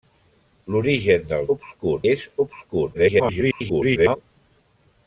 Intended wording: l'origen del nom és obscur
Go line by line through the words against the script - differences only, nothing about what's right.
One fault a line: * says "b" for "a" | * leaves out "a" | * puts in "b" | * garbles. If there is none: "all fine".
* says "obscur" for "nom"
* garbles